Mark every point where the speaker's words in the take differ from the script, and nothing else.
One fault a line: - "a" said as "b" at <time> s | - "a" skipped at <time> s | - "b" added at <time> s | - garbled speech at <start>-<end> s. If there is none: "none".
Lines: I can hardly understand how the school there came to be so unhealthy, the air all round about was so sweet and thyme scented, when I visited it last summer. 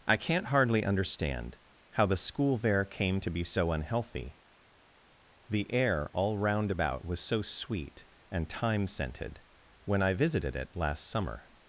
- "can" said as "can't" at 0.2 s